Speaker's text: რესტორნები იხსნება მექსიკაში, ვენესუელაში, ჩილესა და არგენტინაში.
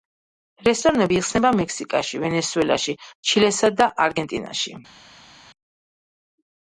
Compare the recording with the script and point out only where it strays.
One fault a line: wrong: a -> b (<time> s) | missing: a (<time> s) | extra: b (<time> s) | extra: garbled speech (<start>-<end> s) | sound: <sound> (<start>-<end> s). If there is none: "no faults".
no faults